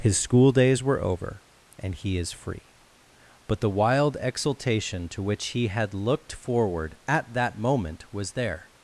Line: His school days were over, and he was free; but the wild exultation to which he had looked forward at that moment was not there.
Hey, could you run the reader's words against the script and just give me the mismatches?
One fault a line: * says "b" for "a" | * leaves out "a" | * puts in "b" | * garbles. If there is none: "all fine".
* says "is" for "was"
* leaves out "not"